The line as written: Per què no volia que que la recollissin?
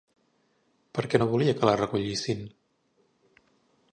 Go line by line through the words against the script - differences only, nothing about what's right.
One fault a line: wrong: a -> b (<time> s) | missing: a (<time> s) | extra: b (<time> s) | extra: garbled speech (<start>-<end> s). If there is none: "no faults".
missing: que (1.7 s)